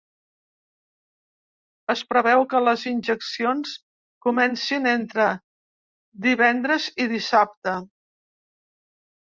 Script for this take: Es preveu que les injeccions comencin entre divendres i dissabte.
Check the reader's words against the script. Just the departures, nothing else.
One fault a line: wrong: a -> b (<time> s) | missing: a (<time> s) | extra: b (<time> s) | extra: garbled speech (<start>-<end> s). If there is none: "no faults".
no faults